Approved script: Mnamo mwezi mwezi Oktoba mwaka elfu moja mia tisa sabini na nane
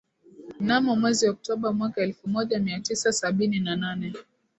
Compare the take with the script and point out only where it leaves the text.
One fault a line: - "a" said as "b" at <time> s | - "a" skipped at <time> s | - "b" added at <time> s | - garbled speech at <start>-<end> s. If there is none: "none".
- "mwezi" skipped at 1.3 s